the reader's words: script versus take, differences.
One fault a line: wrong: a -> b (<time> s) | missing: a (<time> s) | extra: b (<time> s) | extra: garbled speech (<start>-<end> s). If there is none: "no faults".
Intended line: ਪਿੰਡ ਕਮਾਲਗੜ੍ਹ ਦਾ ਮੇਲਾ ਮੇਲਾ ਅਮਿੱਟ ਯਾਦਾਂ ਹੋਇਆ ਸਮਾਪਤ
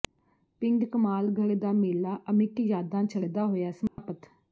missing: ਮੇਲਾ (2.2 s)
extra: ਛੱਡਦਾ (3.0 s)